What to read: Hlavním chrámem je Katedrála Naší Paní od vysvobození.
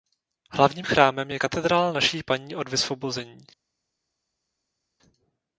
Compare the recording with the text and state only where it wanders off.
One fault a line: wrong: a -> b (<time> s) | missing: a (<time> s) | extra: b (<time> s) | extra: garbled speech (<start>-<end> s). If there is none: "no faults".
no faults